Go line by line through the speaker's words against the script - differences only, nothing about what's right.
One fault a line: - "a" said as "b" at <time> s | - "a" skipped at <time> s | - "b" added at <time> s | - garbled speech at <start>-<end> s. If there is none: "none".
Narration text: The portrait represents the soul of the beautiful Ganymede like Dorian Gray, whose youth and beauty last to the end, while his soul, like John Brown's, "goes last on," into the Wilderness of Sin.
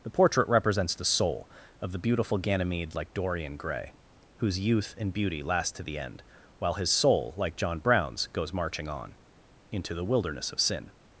- "last" said as "marching" at 8.5 s